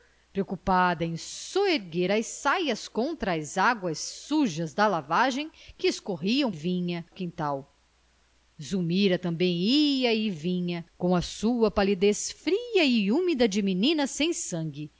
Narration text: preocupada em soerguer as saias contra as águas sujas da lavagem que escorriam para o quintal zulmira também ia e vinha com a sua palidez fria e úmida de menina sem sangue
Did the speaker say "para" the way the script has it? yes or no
no